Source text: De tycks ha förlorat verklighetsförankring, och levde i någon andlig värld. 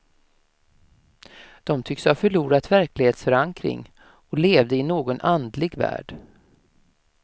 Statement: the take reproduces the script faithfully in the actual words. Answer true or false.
true